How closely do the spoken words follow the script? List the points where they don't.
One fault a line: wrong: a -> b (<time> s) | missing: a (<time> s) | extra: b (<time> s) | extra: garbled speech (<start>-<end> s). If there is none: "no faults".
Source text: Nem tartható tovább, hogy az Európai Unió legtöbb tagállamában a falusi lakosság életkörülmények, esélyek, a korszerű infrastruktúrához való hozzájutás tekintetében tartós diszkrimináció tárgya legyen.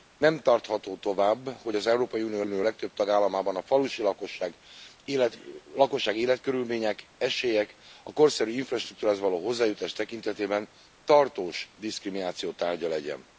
extra: Unió (2.4 s)